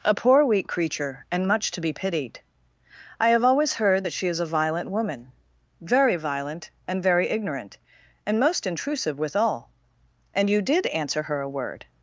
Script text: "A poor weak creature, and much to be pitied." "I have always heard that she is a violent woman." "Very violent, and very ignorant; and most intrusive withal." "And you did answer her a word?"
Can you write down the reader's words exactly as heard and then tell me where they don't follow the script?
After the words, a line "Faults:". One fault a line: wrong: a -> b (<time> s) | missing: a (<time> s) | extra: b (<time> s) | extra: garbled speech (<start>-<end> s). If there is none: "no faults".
"A poor weak creature, and much to be pitied." "I have always heard that she is a violent woman." "Very violent, and very ignorant; and most intrusive withal." "And you did answer her a word?"
Faults:
no faults